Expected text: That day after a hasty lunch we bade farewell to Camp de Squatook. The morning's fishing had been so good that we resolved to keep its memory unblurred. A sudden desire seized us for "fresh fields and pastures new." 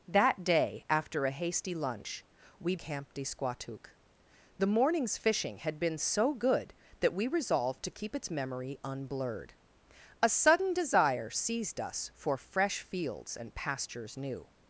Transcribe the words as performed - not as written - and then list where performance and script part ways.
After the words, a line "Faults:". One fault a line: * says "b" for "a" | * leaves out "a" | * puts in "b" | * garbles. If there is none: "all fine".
That day after a hasty lunch we Camp de Squatook. The morning's fishing had been so good that we resolved to keep its memory unblurred. A sudden desire seized us for "fresh fields and pastures new."
Faults:
* leaves out "bade farewell to"